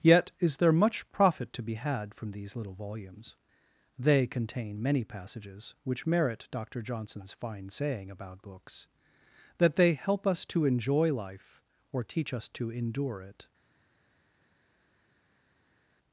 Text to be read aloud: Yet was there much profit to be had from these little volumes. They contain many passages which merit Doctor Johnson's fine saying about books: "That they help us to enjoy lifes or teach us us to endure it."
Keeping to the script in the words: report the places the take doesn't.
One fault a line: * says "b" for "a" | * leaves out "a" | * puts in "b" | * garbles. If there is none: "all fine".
* says "is" for "was"
* says "life" for "lifes"
* leaves out "us"